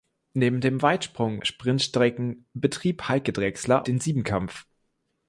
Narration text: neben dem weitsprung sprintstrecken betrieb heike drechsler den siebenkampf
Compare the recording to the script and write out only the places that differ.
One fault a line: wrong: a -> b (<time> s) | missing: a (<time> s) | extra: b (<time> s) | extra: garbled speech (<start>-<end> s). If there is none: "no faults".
no faults